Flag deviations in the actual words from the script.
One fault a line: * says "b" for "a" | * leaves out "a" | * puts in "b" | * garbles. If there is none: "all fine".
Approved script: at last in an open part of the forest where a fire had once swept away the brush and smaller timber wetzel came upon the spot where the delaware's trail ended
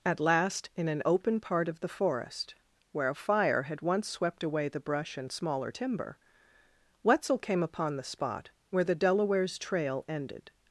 all fine